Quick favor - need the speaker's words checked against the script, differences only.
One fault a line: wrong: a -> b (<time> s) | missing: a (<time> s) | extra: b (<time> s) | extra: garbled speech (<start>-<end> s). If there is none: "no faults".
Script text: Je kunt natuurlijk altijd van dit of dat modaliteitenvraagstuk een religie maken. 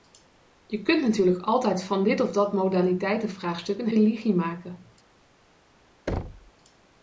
no faults